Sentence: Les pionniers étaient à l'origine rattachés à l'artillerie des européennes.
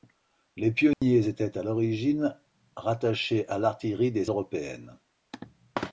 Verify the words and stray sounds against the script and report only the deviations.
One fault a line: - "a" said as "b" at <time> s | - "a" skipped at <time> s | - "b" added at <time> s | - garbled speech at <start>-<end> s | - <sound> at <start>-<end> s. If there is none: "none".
- dropout at 0.9-1.0 s